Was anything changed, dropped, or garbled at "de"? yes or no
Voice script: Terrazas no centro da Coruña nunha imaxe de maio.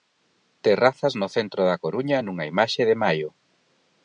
no